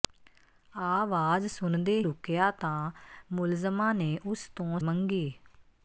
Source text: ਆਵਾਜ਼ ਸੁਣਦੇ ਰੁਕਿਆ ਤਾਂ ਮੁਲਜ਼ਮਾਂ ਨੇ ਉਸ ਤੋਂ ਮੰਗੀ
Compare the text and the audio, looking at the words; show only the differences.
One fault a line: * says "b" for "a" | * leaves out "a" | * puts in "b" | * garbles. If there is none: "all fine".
all fine